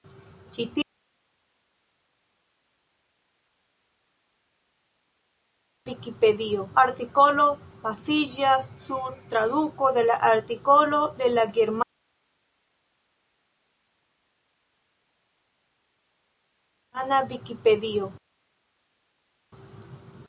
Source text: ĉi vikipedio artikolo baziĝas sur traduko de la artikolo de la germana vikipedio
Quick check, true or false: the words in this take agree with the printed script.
true